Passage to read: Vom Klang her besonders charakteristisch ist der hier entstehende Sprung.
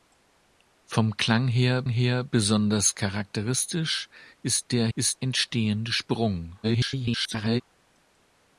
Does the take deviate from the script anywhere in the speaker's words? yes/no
yes